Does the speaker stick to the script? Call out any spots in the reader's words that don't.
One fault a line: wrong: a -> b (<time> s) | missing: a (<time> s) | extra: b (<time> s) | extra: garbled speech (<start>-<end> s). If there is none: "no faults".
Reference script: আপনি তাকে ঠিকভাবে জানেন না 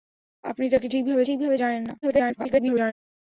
extra: ঠিকভাবে (1.2 s)
extra: garbled speech (2.0-2.9 s)